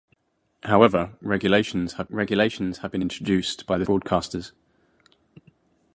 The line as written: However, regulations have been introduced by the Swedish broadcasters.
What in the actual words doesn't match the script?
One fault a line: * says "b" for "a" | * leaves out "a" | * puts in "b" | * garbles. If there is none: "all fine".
* puts in "regulations have"
* leaves out "Swedish"